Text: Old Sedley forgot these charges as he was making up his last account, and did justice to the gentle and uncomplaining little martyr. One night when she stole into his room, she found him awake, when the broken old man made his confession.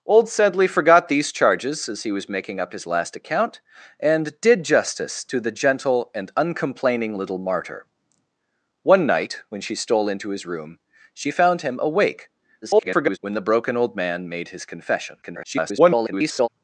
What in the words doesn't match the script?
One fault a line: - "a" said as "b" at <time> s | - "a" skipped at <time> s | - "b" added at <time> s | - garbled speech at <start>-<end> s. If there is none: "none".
- garbled speech at 12.6-13.2 s
- garbled speech at 15.2-16.5 s